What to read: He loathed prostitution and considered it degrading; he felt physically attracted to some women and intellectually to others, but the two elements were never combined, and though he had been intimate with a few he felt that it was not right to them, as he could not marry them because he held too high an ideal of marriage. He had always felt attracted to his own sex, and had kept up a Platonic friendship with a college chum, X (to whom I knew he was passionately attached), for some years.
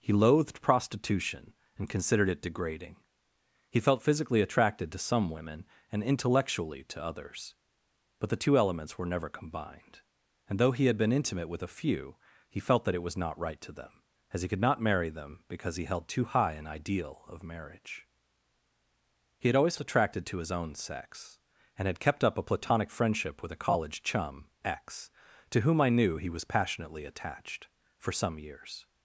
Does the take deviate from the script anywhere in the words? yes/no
yes